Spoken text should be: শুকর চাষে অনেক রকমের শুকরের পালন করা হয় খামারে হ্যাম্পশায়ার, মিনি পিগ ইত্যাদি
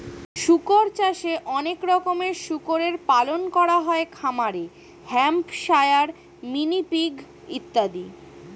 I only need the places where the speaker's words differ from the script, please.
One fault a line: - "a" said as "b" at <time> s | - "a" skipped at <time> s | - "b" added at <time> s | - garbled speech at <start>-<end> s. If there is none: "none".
none